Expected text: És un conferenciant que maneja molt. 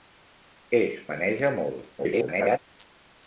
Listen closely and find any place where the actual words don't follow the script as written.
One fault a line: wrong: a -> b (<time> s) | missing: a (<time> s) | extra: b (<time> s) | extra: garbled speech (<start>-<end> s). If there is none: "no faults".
missing: un conferenciant que (0.9 s)
extra: garbled speech (2.0-2.6 s)